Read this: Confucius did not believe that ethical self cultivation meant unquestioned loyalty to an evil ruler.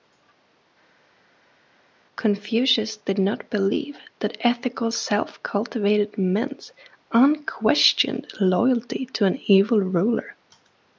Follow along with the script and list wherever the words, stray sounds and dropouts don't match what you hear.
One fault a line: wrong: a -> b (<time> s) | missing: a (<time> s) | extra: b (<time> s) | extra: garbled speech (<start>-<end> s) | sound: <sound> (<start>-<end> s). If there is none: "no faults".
no faults